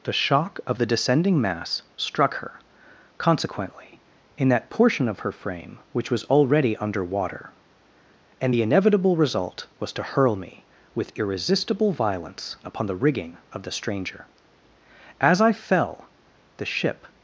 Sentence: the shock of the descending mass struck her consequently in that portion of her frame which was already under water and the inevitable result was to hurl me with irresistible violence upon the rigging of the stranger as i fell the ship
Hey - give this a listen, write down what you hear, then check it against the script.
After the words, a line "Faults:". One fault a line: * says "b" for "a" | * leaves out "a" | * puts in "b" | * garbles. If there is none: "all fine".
the shock of the descending mass struck her consequently in that portion of her frame which was already under water and the inevitable result was to hurl me with irresistible violence upon the rigging of the stranger as i fell the ship
Faults:
all fine